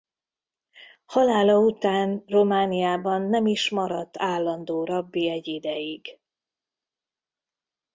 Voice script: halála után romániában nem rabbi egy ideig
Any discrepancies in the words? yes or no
yes